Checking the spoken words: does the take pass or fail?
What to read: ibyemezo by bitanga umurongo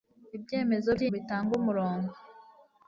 pass